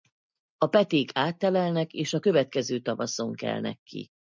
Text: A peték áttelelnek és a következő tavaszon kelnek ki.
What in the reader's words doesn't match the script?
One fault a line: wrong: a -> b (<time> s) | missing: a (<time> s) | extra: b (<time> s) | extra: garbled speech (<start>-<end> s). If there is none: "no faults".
no faults